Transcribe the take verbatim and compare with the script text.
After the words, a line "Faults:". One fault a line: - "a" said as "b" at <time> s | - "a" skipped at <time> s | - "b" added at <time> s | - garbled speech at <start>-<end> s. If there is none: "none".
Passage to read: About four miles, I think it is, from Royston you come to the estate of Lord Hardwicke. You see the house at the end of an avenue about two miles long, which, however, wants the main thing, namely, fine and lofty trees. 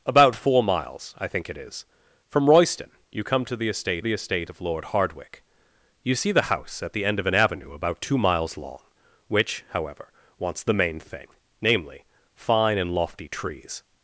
About four miles, I think it is, from Royston you come to the estate the estate of Lord Hardwicke. You see the house at the end of an avenue about two miles long, which, however, wants the main thing, namely, fine and lofty trees.
Faults:
- "the estate" added at 4.0 s